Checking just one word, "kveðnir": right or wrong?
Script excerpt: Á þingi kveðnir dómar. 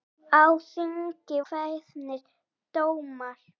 right